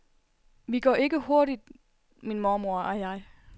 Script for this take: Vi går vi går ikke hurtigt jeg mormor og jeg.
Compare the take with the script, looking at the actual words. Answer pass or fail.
fail